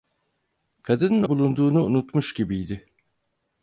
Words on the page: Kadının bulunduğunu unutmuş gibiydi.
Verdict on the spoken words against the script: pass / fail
pass